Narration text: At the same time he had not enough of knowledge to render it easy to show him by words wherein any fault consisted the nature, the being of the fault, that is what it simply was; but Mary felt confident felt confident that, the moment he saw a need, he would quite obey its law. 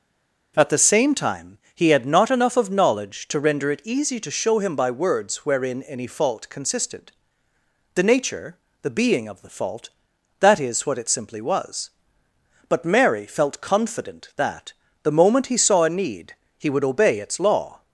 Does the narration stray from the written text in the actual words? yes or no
yes